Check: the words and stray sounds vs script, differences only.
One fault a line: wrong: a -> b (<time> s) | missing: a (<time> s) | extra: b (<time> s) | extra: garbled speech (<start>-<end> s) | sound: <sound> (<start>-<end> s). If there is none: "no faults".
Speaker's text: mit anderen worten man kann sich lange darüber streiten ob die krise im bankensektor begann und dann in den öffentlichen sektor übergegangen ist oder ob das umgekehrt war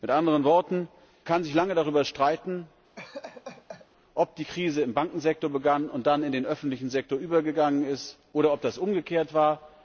missing: man (0.9 s)
sound: laugh (3.0-3.9 s)